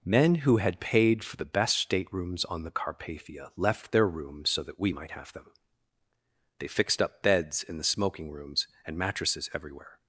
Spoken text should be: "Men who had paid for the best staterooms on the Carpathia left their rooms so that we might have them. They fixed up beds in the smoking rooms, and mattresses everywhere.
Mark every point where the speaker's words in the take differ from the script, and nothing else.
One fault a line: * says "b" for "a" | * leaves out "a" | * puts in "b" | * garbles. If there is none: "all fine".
all fine